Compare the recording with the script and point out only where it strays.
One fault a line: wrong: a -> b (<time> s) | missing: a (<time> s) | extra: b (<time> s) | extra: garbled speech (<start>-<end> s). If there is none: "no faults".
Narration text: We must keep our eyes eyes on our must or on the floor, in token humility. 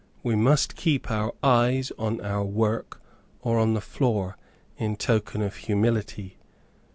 missing: eyes (1.9 s)
wrong: must -> work (2.4 s)
extra: of (5.4 s)